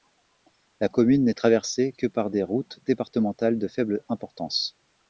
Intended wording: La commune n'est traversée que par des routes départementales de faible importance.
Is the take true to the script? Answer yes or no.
yes